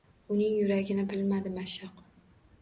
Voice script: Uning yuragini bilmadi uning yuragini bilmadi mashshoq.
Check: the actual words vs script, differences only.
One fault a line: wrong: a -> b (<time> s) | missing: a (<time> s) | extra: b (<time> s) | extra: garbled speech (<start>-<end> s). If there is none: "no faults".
missing: uning yuragini bilmadi (1.5 s)